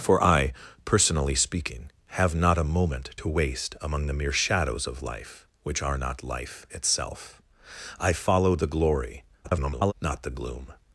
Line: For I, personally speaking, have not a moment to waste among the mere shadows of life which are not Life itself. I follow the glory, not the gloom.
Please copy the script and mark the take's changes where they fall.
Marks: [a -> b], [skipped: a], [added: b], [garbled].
For I, personally speaking, have not a moment to waste among the mere shadows of life which are not Life itself. I follow the glory, [garbled] not the gloom.